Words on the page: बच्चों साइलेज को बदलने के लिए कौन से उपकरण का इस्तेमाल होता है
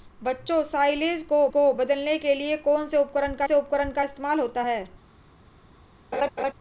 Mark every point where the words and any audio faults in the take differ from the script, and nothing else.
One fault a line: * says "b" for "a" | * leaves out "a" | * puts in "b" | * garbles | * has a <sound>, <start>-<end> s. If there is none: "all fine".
* puts in "को"
* puts in "से उपकरण का"
* has a laugh, 6.1-6.5 s